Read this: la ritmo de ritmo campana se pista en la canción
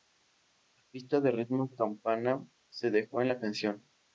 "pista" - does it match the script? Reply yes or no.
no